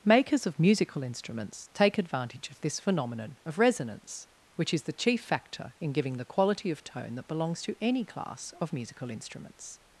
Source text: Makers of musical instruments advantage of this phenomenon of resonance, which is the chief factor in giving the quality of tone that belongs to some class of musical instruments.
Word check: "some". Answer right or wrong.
wrong